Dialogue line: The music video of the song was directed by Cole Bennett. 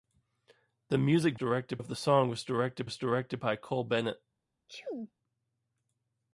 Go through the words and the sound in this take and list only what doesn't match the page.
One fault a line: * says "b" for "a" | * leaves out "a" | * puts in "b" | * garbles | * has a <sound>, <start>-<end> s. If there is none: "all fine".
* says "directed" for "video"
* puts in "was directed"
* has a sneeze, 4.7-5.1 s